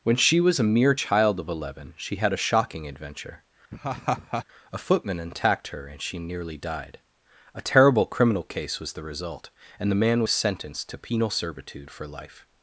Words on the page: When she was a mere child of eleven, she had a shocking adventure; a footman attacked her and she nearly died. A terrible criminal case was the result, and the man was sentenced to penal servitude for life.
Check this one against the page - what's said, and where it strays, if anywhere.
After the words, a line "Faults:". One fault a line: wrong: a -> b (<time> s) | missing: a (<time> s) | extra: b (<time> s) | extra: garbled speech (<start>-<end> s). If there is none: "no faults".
When she was a mere child of eleven, she had a shocking adventure; a footman attacked her and she nearly died. A terrible criminal case was the result, and the man was sentenced to penal servitude for life.
Faults:
no faults